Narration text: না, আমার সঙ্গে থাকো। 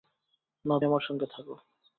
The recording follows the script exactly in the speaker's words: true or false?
true